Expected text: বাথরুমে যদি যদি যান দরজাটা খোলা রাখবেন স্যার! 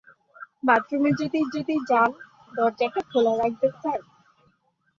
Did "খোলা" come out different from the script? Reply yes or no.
no